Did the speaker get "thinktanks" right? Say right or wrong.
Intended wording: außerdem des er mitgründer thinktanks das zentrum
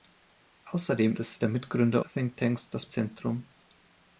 right